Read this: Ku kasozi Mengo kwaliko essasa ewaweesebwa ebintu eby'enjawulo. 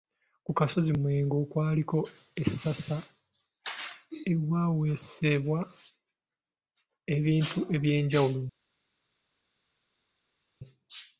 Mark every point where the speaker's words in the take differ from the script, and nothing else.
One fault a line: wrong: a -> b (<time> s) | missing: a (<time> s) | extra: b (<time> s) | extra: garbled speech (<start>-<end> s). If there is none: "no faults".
no faults